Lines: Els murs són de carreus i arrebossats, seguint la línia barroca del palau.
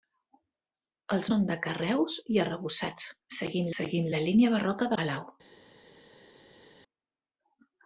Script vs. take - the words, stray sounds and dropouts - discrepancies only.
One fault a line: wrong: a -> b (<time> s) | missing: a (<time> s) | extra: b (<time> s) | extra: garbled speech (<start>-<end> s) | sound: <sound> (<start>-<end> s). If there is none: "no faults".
missing: murs (1.3 s)
extra: seguint (3.8 s)
missing: del (4.9 s)